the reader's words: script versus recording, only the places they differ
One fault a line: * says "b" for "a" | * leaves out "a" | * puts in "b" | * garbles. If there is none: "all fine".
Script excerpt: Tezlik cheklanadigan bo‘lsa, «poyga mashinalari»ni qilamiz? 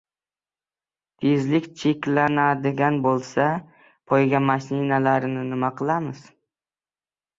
* puts in "nima"